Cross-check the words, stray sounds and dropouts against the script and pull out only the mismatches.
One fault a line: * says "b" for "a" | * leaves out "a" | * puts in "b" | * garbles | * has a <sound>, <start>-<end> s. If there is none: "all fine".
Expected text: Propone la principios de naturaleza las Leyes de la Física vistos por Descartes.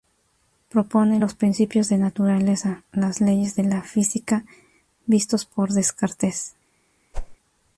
* says "los" for "la"
* has a whoosh, 7.1-7.4 s